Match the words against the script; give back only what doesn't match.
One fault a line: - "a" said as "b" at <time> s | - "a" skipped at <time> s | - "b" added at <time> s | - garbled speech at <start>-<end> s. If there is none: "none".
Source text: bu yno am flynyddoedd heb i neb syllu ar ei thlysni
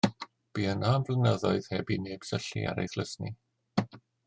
none